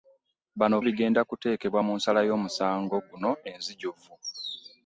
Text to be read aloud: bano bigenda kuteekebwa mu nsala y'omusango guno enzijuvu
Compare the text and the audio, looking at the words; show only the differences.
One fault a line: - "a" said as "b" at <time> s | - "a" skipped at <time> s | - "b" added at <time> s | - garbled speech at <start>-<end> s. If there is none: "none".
none